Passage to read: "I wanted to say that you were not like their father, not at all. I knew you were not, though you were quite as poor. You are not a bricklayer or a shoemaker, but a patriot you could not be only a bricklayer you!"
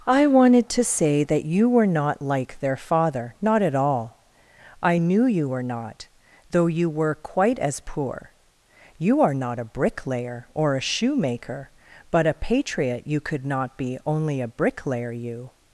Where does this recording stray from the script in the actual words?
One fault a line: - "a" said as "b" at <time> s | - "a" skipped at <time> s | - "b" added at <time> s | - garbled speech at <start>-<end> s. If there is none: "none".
none